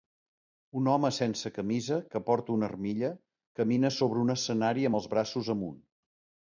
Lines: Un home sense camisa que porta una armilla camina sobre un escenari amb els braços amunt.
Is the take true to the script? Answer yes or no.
yes